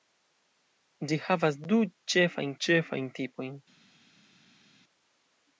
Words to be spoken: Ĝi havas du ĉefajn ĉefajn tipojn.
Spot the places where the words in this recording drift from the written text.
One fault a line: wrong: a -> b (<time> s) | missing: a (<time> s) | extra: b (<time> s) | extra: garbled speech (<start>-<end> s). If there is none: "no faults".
no faults